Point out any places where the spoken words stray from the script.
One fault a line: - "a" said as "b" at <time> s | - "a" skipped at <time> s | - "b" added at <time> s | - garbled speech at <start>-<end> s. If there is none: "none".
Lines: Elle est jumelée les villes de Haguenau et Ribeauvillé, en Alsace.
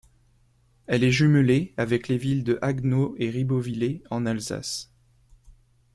- "avec" added at 1.8 s